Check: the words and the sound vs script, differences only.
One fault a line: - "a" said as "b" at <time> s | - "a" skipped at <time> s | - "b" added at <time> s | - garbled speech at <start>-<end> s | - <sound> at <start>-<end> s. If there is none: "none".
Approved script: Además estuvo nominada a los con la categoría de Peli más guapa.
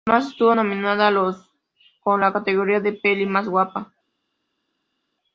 none